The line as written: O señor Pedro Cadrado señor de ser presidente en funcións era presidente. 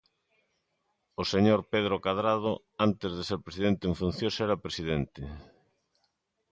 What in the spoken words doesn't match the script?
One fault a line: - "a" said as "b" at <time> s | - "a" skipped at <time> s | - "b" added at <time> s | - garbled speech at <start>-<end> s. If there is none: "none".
- "señor" said as "antes" at 2.9 s